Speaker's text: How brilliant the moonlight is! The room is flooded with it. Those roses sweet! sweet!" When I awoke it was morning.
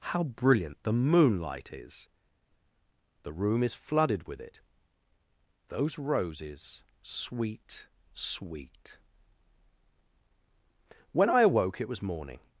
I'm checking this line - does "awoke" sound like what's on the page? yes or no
yes